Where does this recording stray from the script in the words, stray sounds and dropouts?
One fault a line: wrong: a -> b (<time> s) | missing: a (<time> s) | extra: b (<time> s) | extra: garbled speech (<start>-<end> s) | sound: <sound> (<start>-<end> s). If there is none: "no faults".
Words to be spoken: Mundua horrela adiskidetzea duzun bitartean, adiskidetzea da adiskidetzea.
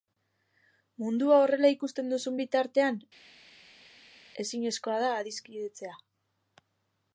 wrong: adiskidetzea -> ikusten (1.8 s)
wrong: adiskidetzea -> ezinezkoa (4.5 s)